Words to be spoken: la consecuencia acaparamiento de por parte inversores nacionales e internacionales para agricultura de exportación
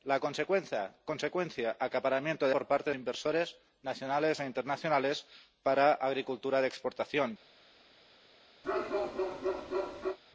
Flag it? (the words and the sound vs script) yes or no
yes